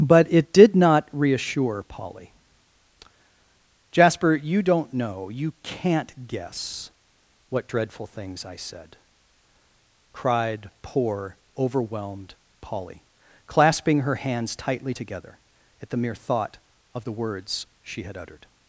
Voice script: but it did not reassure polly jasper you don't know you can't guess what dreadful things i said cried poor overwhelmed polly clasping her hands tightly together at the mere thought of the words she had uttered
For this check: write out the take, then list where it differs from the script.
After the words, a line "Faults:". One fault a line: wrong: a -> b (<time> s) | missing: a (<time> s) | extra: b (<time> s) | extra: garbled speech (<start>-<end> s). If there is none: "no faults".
but it did not reassure polly jasper you don't know you can't guess what dreadful things i said cried poor overwhelmed polly clasping her hands tightly together at the mere thought of the words she had uttered
Faults:
no faults